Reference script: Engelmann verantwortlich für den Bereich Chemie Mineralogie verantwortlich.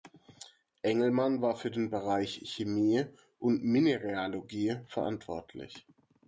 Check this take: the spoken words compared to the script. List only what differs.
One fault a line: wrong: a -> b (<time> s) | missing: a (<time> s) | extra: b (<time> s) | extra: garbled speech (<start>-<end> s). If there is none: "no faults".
wrong: verantwortlich -> war (1.4 s)
extra: und (3.4 s)